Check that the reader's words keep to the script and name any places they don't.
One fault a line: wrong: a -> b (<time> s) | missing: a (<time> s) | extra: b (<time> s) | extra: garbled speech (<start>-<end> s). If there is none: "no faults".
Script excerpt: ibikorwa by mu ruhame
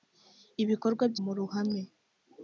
no faults